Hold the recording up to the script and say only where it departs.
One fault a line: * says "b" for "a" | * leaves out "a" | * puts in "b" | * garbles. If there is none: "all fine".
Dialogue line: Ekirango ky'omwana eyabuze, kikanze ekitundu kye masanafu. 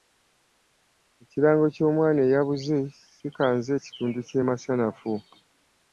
all fine